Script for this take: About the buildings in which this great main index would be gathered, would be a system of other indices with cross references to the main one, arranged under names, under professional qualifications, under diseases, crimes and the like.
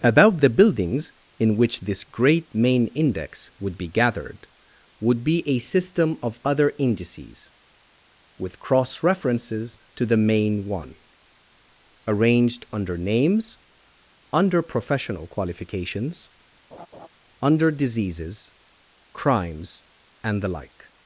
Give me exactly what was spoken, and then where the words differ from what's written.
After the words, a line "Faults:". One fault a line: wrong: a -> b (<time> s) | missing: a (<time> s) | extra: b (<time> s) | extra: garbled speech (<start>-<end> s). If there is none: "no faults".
About the buildings in which this great main index would be gathered, would be a system of other indices with cross references to the main one, arranged under names, under professional qualifications, under diseases, crimes and the like.
Faults:
no faults